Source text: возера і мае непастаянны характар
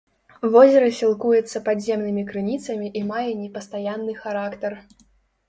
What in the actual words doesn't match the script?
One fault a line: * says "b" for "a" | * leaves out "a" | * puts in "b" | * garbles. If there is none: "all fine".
* puts in "сілкуецца падземнымі крыніцамі"